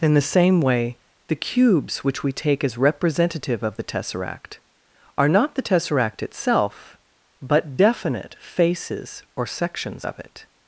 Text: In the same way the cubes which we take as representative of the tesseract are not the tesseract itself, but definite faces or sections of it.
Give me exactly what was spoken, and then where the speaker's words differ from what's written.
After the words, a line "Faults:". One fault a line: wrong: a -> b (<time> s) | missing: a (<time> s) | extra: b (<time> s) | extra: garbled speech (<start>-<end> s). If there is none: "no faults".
In the same way the cubes which we take as representative of the tesseract are not the tesseract itself, but definite faces or sections of it.
Faults:
no faults